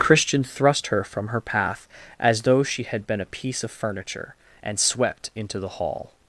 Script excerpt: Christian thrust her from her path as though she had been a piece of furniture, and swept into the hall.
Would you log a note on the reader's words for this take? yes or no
no